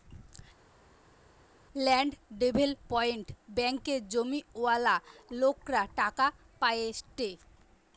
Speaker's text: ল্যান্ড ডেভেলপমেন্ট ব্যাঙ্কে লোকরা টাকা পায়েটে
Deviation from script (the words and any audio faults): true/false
true